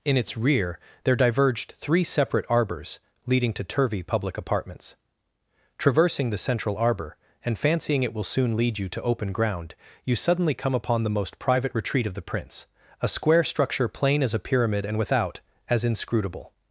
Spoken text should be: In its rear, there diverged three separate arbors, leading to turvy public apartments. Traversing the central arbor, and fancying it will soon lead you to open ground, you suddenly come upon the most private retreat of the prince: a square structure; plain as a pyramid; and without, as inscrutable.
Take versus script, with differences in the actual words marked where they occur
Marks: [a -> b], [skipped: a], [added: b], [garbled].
In its rear, there diverged three separate arbors, leading to turvy public apartments. Traversing the central arbor, and fancying it will soon lead you to open ground, you suddenly come upon the most private retreat of the prince: a square structure; plain as a pyramid; and without, as inscrutable.